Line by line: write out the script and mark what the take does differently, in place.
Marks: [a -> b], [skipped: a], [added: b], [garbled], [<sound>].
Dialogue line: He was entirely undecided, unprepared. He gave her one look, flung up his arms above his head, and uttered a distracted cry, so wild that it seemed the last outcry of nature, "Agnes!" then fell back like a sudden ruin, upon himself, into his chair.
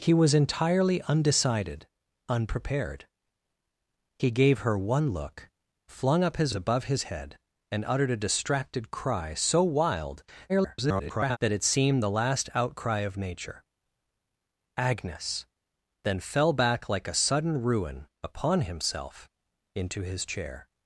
He was entirely undecided, unprepared. He gave her one look, flung up his [skipped: arms] above his head, and uttered a distracted cry, so wild [garbled] that it seemed the last outcry of nature, "Agnes!" then fell back like a sudden ruin, upon himself, into his chair.